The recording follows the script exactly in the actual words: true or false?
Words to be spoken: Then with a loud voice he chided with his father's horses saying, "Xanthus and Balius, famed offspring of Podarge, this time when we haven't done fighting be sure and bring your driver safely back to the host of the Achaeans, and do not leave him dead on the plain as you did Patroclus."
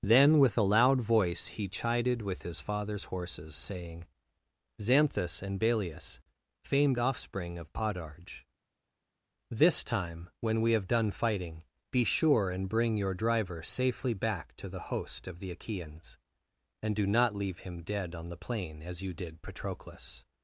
false